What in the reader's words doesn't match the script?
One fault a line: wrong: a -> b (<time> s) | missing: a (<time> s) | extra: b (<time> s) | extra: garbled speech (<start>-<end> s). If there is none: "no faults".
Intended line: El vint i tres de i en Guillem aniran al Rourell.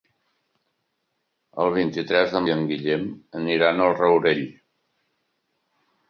no faults